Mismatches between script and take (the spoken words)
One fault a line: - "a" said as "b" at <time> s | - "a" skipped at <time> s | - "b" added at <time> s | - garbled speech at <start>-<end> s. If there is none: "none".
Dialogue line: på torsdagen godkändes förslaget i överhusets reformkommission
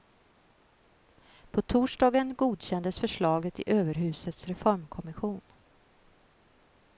none